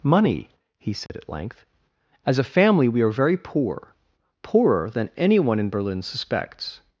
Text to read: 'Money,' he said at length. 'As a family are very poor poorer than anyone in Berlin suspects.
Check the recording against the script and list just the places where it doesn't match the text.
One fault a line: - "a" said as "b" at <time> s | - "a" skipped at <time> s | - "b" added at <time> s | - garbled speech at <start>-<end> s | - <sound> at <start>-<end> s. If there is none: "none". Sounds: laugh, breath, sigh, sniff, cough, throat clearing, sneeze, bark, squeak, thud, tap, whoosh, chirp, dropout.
- dropout at 1.1-1.1 s
- "we" added at 2.9 s